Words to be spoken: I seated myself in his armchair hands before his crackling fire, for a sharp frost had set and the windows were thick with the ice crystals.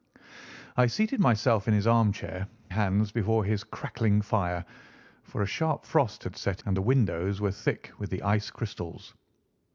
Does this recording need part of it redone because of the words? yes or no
no